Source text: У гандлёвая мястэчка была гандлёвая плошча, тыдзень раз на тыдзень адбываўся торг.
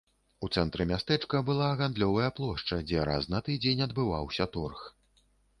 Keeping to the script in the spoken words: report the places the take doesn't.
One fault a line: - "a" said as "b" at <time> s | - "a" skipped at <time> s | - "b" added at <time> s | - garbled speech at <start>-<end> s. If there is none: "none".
- "гандлёвая" said as "цэнтры" at 0.6 s
- "тыдзень" said as "дзе" at 2.9 s